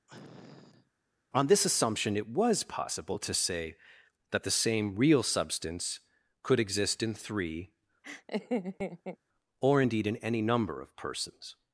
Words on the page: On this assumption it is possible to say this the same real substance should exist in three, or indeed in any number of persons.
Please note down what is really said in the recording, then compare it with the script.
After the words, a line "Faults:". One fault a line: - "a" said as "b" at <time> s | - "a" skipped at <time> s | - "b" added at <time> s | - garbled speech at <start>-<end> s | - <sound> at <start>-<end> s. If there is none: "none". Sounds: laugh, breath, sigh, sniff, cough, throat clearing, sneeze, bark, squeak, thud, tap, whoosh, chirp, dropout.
On this assumption it was possible to say that the same real substance could exist in three, or indeed in any number of persons.
Faults:
- sniff at 0.1-0.9 s
- "is" said as "was" at 2.3 s
- "this" said as "that" at 4.3 s
- "should" said as "could" at 6.4 s
- laugh at 8.0-9.2 s